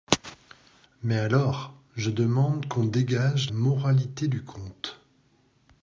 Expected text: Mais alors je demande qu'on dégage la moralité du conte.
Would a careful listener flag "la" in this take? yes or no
yes